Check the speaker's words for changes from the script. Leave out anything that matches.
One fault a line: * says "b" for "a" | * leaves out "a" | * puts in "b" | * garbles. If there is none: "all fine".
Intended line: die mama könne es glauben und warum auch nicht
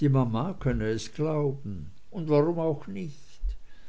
all fine